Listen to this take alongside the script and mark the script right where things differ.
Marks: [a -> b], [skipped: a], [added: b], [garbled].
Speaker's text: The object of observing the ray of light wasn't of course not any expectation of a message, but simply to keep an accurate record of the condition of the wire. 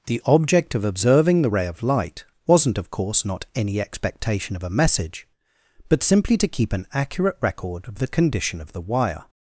The object of observing the ray of light wasn't of course not any expectation of a message, but simply to keep an accurate record of the condition of the wire.